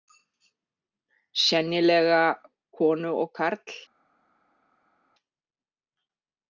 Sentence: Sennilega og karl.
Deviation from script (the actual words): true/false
true